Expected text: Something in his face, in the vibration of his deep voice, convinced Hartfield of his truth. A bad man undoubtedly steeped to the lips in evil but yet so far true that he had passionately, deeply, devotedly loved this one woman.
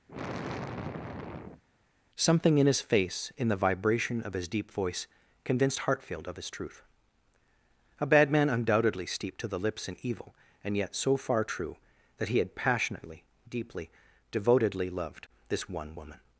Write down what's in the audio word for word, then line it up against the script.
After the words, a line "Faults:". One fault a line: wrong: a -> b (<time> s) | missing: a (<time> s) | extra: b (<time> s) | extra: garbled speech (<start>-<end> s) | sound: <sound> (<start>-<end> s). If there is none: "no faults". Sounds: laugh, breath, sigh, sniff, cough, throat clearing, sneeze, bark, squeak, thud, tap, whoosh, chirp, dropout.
Something in his face, in the vibration of his deep voice, convinced Hartfield of his truth. A bad man undoubtedly steeped to the lips in evil and yet so far true that he had passionately, deeply, devotedly loved this one woman.
Faults:
sound: sigh (0.1-1.6 s)
wrong: but -> and (10.6 s)